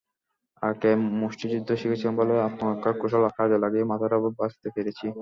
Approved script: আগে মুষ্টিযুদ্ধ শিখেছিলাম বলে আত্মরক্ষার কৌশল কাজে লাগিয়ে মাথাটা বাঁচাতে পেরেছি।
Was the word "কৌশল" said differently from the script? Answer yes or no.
no